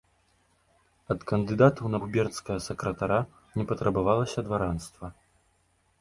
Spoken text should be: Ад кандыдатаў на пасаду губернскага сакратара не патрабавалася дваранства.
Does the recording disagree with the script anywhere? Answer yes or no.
yes